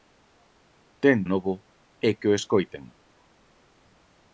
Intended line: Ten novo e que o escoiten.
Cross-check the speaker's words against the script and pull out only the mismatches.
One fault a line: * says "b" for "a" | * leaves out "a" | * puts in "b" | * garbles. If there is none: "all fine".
all fine